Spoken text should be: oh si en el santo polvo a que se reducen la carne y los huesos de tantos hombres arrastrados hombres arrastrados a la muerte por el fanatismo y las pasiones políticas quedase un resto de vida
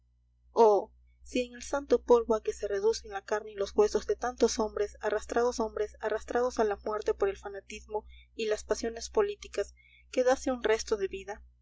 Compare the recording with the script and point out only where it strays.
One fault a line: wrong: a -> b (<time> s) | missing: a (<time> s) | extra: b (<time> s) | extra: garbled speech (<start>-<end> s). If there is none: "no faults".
no faults